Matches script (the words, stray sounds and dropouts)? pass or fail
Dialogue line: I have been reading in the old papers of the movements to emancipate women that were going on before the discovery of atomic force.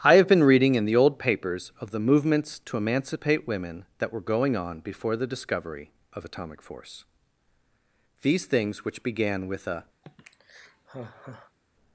fail